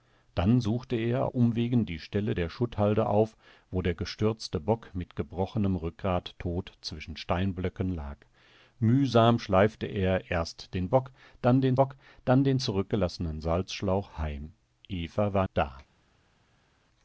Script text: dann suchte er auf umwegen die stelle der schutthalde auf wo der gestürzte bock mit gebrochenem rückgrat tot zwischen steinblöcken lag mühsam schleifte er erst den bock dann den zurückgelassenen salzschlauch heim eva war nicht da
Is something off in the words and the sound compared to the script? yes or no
yes